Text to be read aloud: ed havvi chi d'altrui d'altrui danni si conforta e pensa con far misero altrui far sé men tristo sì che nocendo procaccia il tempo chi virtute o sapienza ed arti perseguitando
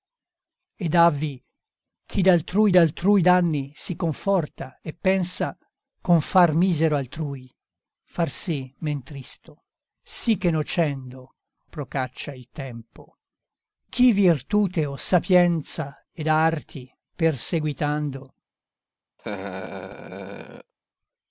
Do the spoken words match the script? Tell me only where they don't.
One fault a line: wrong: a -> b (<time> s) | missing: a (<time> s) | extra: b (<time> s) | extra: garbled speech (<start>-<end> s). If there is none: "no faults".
no faults